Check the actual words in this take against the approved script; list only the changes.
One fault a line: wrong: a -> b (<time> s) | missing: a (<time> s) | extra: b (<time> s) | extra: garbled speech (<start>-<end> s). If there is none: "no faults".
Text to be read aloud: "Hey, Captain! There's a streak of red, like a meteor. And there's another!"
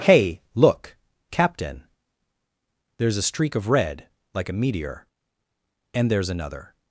extra: look (0.6 s)